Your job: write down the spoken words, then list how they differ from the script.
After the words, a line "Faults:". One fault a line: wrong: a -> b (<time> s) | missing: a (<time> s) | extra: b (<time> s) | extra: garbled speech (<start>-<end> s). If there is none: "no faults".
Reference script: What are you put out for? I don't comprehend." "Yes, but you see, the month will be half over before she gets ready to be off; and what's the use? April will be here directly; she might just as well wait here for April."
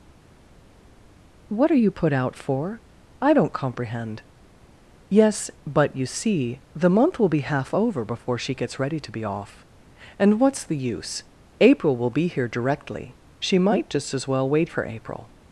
What are you put out for? I don't comprehend." "Yes, but you see, the month will be half over before she gets ready to be off; and what's the use? April will be here directly; she might just as well wait for April."
Faults:
missing: here (14.7 s)